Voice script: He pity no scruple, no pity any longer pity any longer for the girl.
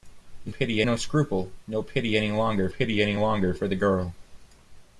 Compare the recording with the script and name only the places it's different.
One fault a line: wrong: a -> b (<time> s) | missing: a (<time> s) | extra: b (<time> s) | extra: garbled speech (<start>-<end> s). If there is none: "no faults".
no faults